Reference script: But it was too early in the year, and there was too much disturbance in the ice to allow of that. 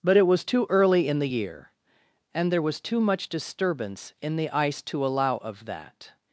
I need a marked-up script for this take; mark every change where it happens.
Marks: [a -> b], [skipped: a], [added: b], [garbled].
But it was too early in the year, and there was too much disturbance in the ice to allow of that.